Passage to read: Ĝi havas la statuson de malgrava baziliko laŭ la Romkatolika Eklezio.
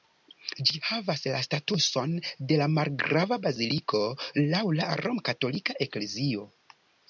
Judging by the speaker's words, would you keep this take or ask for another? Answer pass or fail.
pass